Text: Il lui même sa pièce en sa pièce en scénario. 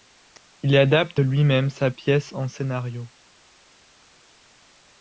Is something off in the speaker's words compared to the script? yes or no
yes